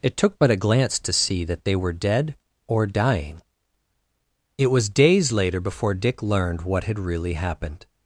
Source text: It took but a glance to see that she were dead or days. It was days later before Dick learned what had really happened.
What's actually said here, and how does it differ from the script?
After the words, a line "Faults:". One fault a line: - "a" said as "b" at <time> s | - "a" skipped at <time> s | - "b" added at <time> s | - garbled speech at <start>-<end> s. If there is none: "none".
It took but a glance to see that they were dead or dying. It was days later before Dick learned what had really happened.
Faults:
- "she" said as "they" at 1.6 s
- "days" said as "dying" at 2.9 s